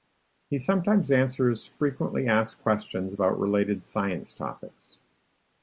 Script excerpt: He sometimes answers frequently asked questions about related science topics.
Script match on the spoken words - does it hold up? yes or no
yes